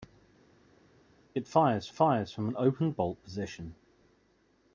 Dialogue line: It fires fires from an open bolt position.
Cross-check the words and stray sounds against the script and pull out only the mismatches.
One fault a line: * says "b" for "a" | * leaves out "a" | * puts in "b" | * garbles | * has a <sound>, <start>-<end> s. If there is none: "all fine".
all fine